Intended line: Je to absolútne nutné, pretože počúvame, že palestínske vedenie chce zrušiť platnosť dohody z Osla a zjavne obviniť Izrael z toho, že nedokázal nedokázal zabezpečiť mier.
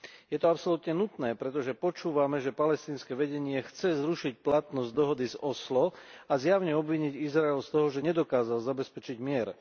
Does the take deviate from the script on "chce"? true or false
false